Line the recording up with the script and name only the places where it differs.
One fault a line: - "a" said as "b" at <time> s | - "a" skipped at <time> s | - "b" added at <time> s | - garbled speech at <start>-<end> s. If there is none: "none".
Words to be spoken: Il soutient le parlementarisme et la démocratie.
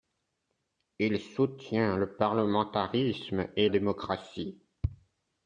- "la" skipped at 3.7 s